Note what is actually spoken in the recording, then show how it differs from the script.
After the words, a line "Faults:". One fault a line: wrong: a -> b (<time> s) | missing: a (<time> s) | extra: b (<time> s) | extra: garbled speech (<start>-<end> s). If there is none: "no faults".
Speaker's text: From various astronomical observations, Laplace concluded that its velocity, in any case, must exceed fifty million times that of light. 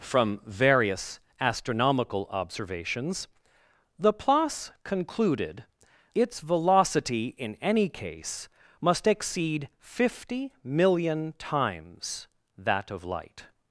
From various astronomical observations, Laplace concluded its velocity, in any case, must exceed fifty million times that of light.
Faults:
missing: that (5.7 s)